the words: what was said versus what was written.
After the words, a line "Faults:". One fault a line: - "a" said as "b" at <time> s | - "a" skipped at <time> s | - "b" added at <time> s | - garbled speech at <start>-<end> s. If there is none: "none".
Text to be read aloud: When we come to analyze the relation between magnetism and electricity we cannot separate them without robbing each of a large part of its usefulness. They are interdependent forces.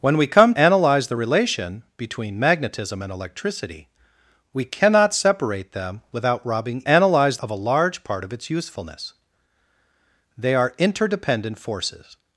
When we come analyze the relation between magnetism and electricity we cannot separate them without robbing analyze of a large part of its usefulness. They are interdependent forces.
Faults:
- "to" skipped at 0.6 s
- "each" said as "analyze" at 6.9 s